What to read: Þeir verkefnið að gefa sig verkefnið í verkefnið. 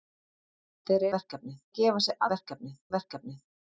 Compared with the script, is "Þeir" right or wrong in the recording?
right